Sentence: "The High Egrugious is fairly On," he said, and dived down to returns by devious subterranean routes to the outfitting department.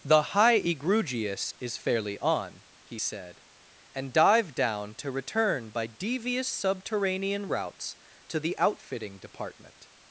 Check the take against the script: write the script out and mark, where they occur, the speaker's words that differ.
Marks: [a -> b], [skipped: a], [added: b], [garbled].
"The High Egrugious is fairly On," he said, and dived down to [returns -> return] by devious subterranean routes to the outfitting department.